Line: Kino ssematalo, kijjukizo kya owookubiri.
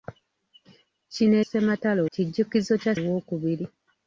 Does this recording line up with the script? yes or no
yes